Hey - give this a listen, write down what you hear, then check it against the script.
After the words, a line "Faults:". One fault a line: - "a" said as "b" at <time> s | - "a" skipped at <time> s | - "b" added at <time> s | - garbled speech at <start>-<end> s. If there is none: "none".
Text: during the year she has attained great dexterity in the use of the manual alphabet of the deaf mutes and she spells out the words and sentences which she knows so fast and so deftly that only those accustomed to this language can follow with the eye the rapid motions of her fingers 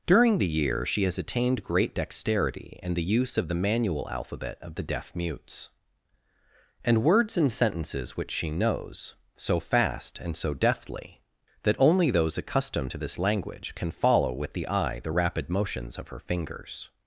during the year she has attained great dexterity in the use of the manual alphabet of the deaf mutes and words and sentences which she knows so fast and so deftly that only those accustomed to this language can follow with the eye the rapid motions of her fingers
Faults:
- "she spells out the" skipped at 7.0 s